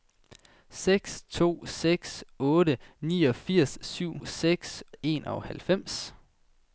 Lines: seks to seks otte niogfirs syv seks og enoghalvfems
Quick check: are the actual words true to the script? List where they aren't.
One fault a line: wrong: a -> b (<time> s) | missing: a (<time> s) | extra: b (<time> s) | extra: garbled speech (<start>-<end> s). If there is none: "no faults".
no faults